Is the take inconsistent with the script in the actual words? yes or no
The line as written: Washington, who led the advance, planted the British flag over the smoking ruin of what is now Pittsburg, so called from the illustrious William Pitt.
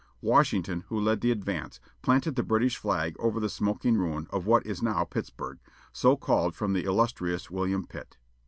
no